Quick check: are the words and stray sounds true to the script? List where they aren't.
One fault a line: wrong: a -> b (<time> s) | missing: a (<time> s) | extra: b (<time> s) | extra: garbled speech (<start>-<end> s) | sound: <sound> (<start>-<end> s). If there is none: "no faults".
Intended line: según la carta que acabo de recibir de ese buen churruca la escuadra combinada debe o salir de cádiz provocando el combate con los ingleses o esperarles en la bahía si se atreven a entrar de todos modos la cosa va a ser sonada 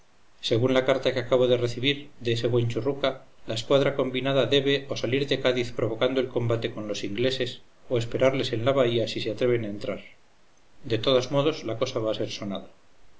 no faults